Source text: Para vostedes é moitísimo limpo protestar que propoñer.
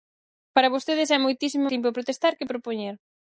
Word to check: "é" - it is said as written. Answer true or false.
true